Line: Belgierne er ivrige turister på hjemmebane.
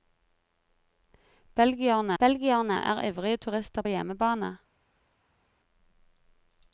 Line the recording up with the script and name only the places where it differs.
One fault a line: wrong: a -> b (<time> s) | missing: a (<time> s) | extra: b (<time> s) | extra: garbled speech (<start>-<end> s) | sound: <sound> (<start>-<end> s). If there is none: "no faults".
extra: belgierne (2.2 s)
missing: på (3.8 s)